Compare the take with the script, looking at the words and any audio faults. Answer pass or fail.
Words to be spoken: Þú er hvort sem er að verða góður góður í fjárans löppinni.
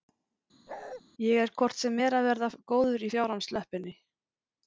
fail